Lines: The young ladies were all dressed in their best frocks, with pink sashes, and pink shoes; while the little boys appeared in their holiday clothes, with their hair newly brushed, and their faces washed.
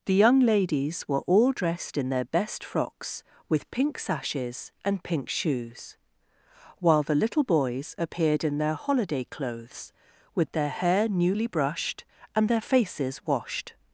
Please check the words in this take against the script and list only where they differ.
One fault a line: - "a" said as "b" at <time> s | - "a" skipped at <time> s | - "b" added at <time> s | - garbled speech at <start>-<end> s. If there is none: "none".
none